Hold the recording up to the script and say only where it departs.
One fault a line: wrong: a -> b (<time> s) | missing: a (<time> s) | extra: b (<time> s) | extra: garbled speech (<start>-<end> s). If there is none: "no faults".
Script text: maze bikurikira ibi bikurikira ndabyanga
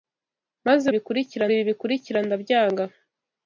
no faults